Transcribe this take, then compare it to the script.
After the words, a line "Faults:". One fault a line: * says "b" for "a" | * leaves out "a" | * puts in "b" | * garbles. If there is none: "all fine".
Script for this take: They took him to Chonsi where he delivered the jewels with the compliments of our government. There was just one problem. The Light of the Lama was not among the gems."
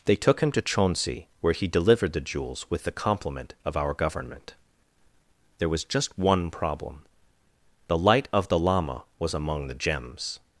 They took him to Chonsi where he delivered the jewels with the compliment of our government. There was just one problem. The Light of the Lama was among the gems."
Faults:
* says "compliment" for "compliments"
* leaves out "not"